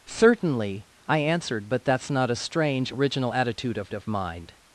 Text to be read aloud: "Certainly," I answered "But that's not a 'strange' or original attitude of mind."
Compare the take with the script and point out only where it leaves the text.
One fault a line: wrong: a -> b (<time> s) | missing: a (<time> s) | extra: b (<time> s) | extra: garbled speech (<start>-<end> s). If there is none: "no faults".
missing: or (2.9 s)
extra: of (3.9 s)